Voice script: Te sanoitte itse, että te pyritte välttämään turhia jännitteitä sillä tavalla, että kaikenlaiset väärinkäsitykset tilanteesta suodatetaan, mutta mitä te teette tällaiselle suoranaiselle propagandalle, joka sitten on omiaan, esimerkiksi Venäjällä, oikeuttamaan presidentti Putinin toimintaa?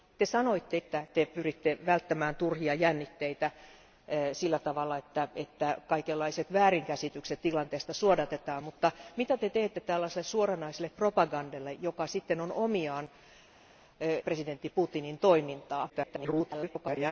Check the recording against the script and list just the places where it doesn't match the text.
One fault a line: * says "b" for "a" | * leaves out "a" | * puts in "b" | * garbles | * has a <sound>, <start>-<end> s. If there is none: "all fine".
* leaves out "itse"
* leaves out "esimerkiksi Venäjällä oikeuttamaan"
* garbles